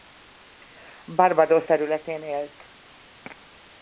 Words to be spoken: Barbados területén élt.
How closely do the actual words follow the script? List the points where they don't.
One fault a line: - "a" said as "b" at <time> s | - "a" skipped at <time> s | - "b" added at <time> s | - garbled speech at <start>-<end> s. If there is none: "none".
none